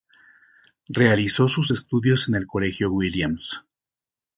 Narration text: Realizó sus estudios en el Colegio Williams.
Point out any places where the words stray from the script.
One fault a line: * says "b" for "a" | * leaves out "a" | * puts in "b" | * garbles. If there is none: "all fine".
all fine